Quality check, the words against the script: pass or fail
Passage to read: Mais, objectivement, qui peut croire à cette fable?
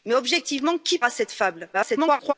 fail